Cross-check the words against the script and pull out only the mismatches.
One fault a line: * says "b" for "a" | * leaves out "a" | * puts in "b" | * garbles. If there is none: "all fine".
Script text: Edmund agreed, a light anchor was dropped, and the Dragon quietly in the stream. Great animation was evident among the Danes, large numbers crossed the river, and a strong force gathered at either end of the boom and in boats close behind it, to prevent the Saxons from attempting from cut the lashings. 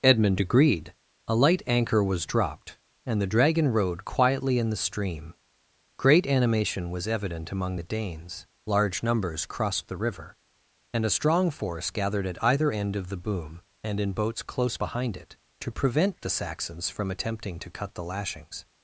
* puts in "rode"
* says "to" for "from"